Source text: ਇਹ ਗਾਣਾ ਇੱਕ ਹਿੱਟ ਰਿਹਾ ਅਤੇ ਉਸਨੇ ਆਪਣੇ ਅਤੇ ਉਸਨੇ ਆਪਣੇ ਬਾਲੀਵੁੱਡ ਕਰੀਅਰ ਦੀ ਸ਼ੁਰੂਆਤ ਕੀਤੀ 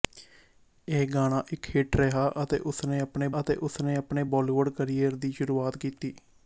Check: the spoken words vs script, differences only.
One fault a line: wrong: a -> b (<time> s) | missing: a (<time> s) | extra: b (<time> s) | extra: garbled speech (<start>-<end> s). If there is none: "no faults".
no faults